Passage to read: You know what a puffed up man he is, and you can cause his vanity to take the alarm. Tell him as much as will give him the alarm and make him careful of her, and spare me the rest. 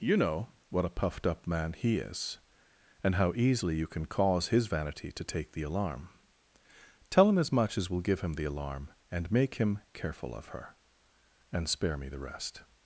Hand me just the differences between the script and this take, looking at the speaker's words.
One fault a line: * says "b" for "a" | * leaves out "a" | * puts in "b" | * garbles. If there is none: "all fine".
* puts in "how easily"